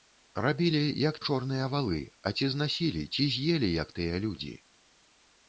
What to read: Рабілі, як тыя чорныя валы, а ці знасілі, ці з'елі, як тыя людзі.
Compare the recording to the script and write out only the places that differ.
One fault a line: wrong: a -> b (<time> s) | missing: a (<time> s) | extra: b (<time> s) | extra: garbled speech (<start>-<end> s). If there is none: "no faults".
missing: тыя (1.2 s)